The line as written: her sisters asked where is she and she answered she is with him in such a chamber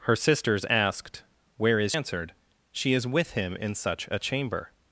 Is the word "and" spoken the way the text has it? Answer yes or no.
no